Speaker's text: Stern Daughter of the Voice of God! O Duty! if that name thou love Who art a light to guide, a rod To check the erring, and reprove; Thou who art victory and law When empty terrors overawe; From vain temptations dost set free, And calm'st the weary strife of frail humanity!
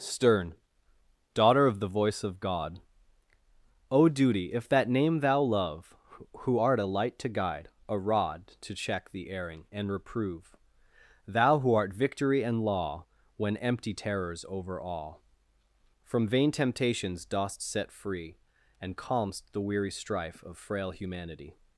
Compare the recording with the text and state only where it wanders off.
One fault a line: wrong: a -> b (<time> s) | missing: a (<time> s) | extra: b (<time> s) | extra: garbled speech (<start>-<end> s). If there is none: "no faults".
no faults